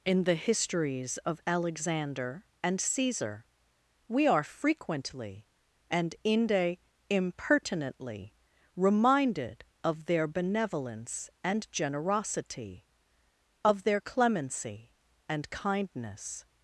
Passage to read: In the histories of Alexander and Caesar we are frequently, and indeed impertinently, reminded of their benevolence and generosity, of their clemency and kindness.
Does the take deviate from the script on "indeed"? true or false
true